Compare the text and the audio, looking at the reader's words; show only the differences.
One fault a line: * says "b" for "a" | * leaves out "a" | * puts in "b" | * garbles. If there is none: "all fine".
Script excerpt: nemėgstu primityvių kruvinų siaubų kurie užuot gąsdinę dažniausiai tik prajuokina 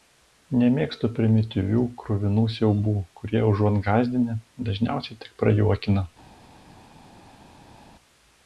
all fine